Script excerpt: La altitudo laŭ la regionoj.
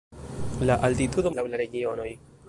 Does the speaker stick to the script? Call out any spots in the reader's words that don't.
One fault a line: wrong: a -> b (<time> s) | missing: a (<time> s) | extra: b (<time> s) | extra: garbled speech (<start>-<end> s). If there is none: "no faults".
no faults